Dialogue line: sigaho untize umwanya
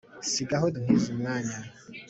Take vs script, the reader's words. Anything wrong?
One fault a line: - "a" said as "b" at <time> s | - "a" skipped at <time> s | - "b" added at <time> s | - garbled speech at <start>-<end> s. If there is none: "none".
none